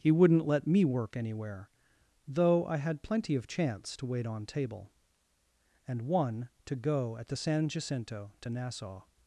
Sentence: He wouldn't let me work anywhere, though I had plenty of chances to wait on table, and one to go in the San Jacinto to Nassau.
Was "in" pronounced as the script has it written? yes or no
no